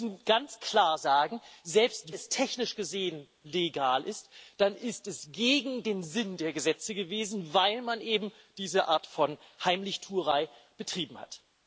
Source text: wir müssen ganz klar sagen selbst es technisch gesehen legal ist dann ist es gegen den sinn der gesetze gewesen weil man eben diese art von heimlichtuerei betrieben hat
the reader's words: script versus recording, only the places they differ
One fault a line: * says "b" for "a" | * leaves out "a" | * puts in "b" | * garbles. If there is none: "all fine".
all fine